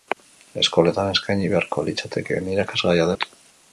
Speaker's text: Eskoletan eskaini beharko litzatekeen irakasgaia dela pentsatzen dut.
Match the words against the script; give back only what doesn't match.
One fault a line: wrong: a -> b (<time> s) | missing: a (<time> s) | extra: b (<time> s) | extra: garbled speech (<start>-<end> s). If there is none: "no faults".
missing: dela pentsatzen (3.1 s)